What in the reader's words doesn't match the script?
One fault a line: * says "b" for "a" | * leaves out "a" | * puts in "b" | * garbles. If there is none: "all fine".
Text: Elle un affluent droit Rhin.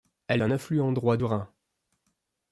all fine